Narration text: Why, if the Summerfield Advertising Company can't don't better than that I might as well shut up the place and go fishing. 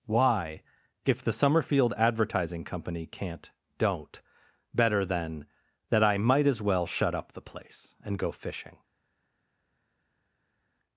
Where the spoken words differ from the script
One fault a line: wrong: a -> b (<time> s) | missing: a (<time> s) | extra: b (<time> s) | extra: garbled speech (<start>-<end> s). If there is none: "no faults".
no faults